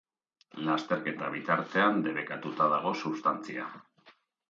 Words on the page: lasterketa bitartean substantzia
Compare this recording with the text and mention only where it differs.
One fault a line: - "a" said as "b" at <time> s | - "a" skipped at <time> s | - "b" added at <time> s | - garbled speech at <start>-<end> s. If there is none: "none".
- "debekatuta dago" added at 2.1 s